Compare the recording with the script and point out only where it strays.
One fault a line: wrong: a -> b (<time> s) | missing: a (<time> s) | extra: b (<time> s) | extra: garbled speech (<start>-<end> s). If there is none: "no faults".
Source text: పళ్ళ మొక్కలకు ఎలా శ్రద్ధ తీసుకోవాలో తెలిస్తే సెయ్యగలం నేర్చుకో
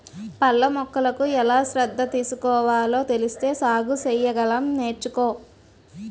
extra: సాగు (3.5 s)